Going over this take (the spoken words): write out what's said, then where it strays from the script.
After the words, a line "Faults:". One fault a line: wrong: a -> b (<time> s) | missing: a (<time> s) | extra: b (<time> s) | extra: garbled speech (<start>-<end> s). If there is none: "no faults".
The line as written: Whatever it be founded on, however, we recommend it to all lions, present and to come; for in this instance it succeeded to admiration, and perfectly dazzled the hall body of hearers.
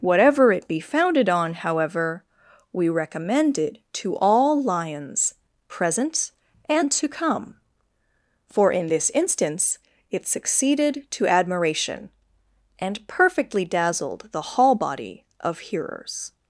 Whatever it be founded on, however, we recommend it to all lions, present and to come; for in this instance it succeeded to admiration, and perfectly dazzled the hall body of hearers.
Faults:
no faults